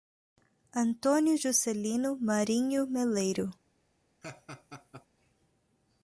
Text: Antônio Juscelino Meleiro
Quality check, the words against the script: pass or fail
fail